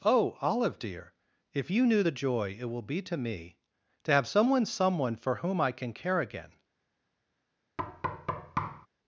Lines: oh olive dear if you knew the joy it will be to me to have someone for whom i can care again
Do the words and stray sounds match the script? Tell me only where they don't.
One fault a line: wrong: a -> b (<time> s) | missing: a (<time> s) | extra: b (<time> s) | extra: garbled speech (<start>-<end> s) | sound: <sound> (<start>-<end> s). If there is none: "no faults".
extra: someone (4.6 s)
sound: thud (7.8-8.9 s)